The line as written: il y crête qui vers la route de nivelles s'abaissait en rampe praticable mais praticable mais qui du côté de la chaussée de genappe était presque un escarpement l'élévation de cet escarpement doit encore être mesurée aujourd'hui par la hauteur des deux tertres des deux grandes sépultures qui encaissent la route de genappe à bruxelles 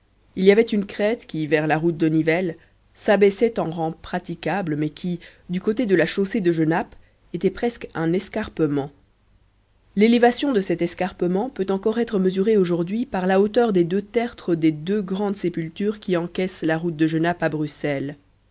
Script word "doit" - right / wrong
wrong